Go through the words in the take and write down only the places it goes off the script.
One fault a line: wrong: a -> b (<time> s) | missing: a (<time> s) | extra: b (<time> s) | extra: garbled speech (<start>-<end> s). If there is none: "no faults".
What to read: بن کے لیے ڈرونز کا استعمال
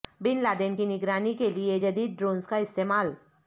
extra: لادن کی نگرانی (0.4 s)
extra: جدید (1.8 s)